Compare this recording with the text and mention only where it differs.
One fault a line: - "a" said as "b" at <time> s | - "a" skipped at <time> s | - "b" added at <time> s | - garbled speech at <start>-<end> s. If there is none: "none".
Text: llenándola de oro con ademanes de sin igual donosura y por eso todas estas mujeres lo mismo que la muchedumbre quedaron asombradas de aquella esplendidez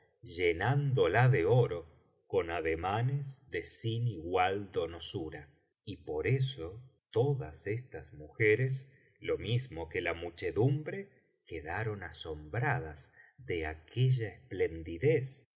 none